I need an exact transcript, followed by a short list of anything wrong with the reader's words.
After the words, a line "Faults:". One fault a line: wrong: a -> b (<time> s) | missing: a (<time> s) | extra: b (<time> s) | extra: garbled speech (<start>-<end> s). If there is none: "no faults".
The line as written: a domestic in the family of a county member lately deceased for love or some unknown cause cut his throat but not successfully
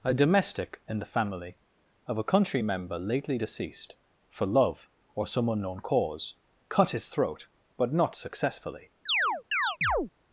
a domestic in the family of a country member lately deceased for love or some unknown cause cut his throat but not successfully
Faults:
wrong: county -> country (2.2 s)